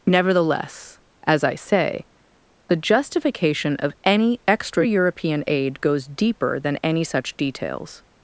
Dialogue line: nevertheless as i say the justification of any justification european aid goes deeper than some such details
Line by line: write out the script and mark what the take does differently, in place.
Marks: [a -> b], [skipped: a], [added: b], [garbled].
nevertheless as i say the justification of any [justification -> extra] european aid goes deeper than [some -> any] such details